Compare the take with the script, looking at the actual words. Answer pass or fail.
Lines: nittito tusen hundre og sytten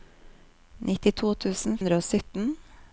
pass